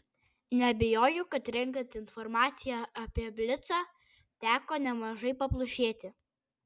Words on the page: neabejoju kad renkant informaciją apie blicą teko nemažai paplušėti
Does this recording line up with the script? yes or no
yes